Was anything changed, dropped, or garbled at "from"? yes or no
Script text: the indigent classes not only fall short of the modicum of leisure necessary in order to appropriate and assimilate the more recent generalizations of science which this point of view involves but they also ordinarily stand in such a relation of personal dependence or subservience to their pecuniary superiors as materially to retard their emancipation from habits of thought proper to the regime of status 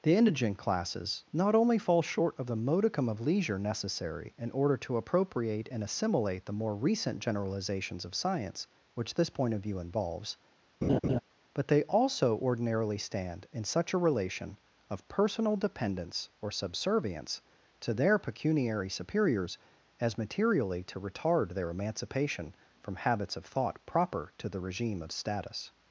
no